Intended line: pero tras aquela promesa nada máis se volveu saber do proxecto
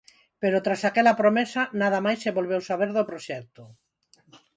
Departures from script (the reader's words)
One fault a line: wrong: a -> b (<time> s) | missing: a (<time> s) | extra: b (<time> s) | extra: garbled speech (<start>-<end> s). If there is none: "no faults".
no faults